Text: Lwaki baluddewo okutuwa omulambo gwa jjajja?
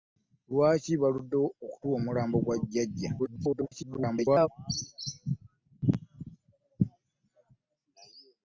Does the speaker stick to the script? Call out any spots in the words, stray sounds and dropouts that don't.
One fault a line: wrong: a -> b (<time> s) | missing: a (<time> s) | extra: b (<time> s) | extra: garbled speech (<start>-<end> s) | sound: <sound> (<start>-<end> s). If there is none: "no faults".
extra: garbled speech (3.2-4.5 s)